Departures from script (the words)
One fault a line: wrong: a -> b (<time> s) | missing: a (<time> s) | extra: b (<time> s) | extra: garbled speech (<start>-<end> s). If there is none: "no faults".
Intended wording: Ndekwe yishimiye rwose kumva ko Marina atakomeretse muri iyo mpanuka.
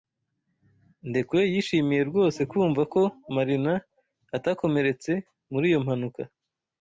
no faults